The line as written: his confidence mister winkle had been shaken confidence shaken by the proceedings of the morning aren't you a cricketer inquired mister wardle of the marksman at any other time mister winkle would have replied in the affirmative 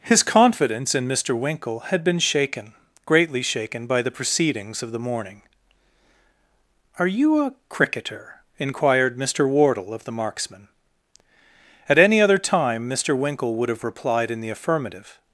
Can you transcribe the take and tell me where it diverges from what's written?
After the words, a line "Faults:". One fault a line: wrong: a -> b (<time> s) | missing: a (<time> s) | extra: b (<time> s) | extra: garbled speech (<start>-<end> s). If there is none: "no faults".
his confidence in mister winkle had been shaken greatly shaken by the proceedings of the morning are you a cricketer inquired mister wardle of the marksman at any other time mister winkle would have replied in the affirmative
Faults:
extra: in (0.9 s)
wrong: confidence -> greatly (3.0 s)
wrong: aren't -> are (7.0 s)